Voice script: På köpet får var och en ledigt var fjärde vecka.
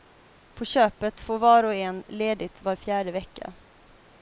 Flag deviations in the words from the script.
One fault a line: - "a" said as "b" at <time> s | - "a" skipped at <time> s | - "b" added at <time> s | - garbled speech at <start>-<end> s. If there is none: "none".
none